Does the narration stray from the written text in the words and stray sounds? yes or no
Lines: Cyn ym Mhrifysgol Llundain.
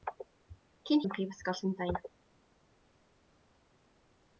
no